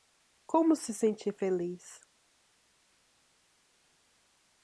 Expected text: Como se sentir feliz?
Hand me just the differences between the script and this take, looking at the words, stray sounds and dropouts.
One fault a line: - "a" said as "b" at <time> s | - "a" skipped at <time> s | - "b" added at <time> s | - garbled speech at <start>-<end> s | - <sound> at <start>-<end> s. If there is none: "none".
none